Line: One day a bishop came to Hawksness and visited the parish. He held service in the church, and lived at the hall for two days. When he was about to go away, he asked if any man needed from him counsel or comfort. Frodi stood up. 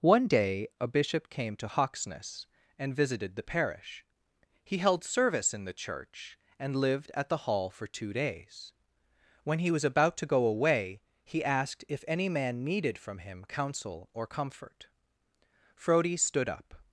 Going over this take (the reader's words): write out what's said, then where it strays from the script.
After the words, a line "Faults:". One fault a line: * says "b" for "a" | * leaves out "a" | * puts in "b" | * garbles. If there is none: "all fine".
One day a bishop came to Hawksness and visited the parish. He held service in the church, and lived at the hall for two days. When he was about to go away, he asked if any man needed from him counsel or comfort. Frodi stood up.
Faults:
all fine